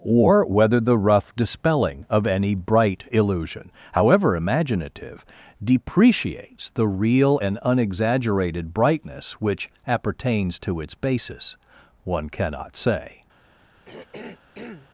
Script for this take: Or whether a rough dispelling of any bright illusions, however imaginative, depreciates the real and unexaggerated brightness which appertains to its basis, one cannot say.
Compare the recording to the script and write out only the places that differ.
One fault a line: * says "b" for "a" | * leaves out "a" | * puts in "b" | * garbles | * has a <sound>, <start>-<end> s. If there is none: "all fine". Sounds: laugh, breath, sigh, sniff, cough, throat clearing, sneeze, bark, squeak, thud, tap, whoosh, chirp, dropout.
* says "the" for "a"
* says "illusion" for "illusions"
* has a throat clearing, 13.9-14.9 s